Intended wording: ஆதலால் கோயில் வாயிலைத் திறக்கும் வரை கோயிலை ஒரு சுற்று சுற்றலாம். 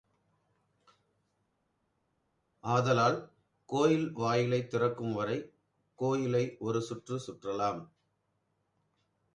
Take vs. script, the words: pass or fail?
pass